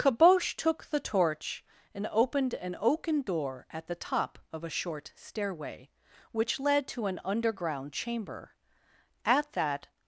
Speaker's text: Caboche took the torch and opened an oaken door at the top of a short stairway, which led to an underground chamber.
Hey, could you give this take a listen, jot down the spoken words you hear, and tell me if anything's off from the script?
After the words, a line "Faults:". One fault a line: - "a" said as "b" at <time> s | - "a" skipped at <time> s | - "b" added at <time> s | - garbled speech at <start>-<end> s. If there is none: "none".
Caboche took the torch and opened an oaken door at the top of a short stairway, which led to an underground chamber. At that
Faults:
- "At that" added at 9.2 s